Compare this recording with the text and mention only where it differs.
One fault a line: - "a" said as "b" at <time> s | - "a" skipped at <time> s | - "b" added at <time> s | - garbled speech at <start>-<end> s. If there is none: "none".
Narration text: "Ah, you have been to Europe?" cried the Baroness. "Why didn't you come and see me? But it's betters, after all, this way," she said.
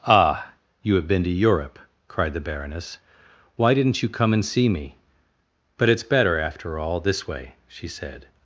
- "betters" said as "better" at 6.0 s